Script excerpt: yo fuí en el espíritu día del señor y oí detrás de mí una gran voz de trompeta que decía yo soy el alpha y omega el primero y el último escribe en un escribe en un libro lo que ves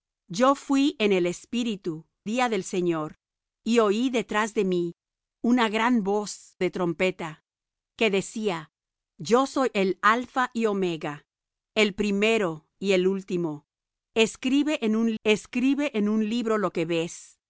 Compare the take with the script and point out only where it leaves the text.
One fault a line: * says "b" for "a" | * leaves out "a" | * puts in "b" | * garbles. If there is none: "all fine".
all fine